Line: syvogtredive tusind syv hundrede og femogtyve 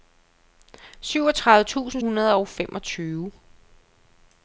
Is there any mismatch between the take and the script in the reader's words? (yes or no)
yes